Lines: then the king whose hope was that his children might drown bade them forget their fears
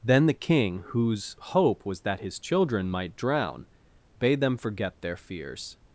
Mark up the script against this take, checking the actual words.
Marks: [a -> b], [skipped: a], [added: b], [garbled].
then the king whose hope was that his children might drown bade them forget their fears